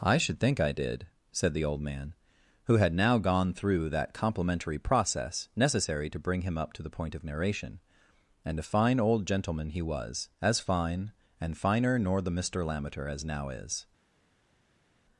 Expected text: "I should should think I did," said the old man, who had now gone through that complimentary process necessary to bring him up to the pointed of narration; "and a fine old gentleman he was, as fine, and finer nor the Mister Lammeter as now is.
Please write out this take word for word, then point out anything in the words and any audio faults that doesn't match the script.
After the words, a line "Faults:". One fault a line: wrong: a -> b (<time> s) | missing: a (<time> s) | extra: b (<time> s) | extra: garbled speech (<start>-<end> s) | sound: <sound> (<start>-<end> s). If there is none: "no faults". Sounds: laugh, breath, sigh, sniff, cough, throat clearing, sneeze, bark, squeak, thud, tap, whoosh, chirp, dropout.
"I should think I did," said the old man, who had now gone through that complimentary process necessary to bring him up to the point of narration; "and a fine old gentleman he was, as fine, and finer nor the Mister Lammeter as now is.
Faults:
missing: should (0.4 s)
wrong: pointed -> point (6.9 s)